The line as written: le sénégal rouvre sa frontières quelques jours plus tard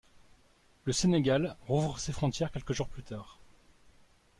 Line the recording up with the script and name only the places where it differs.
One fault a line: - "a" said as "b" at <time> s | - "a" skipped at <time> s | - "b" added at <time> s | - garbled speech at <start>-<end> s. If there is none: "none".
- "sa" said as "ses" at 2.0 s